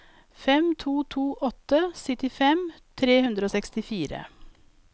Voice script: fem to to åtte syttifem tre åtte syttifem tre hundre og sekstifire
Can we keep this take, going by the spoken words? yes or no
no